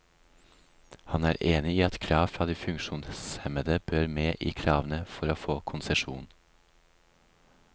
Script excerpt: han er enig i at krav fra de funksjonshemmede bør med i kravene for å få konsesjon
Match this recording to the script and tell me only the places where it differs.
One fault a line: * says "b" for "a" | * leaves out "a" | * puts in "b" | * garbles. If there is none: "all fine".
all fine